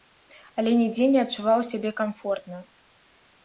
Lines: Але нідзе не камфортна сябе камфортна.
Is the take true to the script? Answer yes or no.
no